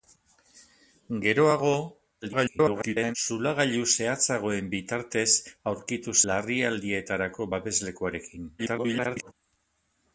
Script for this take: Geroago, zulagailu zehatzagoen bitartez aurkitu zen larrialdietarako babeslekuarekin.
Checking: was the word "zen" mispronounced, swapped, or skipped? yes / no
yes